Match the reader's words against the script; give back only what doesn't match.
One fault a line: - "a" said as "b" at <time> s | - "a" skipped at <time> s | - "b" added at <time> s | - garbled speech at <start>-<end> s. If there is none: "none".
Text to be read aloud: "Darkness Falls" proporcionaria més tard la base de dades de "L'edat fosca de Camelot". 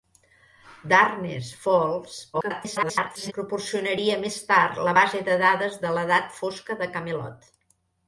- garbled speech at 2.3-3.3 s